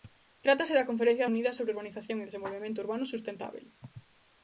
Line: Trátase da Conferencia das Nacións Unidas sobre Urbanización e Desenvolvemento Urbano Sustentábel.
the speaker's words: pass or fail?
fail